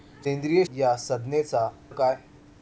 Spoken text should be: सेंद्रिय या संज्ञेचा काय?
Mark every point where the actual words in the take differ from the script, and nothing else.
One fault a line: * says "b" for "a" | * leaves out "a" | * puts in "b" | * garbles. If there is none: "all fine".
all fine